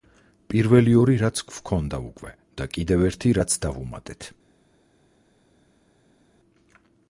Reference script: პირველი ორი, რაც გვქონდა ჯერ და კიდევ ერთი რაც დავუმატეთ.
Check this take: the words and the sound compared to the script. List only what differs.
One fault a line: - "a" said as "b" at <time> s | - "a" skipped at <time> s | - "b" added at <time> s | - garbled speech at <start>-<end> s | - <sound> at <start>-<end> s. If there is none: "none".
- "ჯერ" said as "უკვე" at 2.1 s